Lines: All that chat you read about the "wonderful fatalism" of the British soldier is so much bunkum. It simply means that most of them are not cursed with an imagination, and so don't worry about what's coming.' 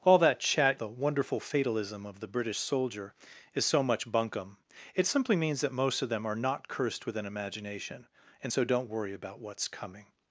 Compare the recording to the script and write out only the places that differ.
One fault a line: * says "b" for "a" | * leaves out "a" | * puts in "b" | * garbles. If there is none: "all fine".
* leaves out "you read about"